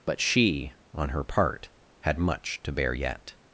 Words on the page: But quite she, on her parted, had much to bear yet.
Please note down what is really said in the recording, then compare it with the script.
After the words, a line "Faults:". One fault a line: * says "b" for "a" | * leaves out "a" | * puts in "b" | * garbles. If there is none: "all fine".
But she, on her part, had much to bear yet.
Faults:
* leaves out "quite"
* says "part" for "parted"